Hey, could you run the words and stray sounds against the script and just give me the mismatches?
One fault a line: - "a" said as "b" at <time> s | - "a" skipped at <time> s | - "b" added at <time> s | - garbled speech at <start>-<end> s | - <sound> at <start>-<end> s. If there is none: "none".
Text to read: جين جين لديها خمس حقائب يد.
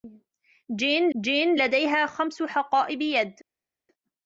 none